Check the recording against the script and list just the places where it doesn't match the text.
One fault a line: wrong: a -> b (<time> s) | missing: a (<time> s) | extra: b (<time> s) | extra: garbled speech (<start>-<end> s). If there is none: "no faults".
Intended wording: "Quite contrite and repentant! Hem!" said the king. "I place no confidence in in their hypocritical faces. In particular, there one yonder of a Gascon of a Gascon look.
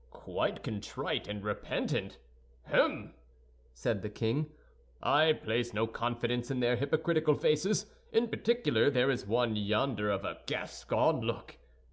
missing: in (6.6 s)
extra: is (9.1 s)
missing: of a Gascon (11.2 s)